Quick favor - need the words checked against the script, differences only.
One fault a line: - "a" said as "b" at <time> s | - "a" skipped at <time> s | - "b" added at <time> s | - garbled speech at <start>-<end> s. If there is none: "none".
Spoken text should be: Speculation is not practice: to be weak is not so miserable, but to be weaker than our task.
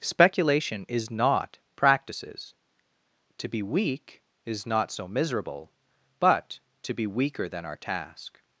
- "practice" said as "practices" at 1.8 s